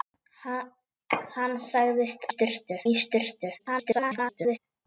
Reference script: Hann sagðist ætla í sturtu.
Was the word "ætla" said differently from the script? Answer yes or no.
yes